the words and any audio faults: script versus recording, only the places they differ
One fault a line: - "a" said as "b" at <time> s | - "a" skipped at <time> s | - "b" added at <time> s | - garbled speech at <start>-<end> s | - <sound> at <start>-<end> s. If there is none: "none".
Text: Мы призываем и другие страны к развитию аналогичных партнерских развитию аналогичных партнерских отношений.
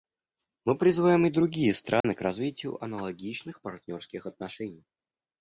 - dropout at 2.0-2.0 s
- "развитию аналогичных партнерских" skipped at 4.3 s